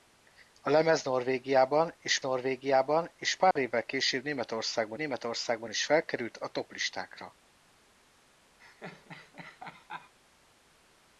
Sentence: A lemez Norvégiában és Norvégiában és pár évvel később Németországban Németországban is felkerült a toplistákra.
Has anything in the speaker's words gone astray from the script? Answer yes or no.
no